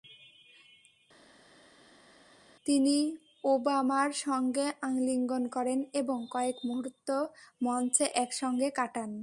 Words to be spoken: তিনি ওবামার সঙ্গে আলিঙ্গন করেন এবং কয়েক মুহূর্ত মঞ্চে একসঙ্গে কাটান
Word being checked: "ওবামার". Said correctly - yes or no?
yes